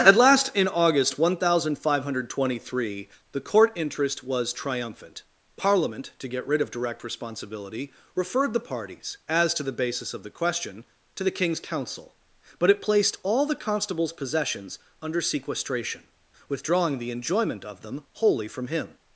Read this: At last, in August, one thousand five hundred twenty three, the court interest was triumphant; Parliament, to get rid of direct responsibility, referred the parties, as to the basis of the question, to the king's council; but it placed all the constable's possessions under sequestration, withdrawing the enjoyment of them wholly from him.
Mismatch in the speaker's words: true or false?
false